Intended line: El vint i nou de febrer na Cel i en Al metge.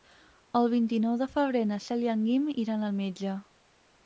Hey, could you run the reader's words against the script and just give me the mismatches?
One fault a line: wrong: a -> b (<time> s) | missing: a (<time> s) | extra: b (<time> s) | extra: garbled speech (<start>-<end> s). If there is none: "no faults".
extra: Guim iran (2.3 s)